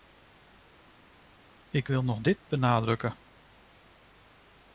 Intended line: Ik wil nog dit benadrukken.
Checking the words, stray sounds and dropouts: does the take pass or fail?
pass